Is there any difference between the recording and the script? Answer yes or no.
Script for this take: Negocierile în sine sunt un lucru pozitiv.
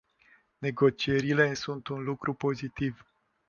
yes